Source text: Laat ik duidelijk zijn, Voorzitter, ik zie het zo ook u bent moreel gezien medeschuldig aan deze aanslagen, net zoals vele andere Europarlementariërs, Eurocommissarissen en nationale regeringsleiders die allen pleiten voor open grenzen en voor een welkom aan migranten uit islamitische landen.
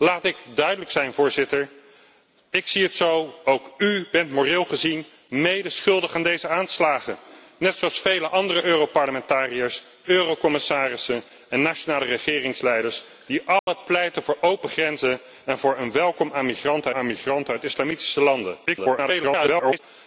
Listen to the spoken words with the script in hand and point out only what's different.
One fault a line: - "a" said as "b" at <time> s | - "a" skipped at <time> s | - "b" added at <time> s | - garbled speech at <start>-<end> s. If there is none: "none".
- "aan migranten" added at 16.9 s
- garbled speech at 18.7-19.8 s